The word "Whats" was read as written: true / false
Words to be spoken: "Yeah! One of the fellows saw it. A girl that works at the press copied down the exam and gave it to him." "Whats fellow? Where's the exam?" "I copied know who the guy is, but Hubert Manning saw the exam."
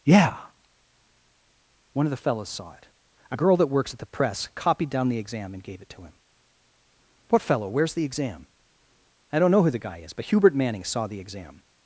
false